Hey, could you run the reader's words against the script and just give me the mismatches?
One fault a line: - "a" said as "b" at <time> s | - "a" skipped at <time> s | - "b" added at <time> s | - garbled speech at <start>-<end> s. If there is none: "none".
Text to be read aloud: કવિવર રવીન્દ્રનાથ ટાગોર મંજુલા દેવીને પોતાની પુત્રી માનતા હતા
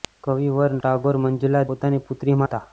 - "રવીન્દ્રનાથ" skipped at 0.7 s
- "દેવીને" skipped at 1.7 s
- "માનતા" skipped at 2.4 s